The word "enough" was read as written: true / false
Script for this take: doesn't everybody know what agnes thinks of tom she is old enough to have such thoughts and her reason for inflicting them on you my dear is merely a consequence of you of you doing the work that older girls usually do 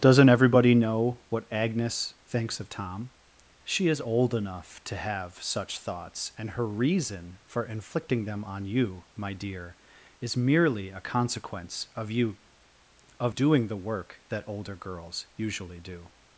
true